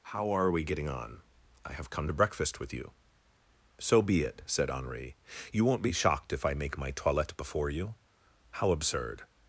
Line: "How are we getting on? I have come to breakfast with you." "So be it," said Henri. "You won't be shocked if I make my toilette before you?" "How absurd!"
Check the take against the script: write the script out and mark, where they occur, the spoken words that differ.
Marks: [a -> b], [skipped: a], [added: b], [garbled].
"How are we getting on? I have come to breakfast with you." "So be it," said Henri. "You won't be shocked if I make my toilette before you?" "How absurd!"